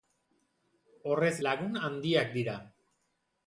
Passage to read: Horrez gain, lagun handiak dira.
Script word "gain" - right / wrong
wrong